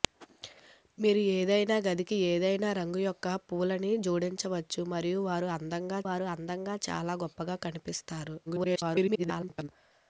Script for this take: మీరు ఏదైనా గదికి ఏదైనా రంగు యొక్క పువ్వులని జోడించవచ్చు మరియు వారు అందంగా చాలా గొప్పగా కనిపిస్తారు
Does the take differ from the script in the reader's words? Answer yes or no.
yes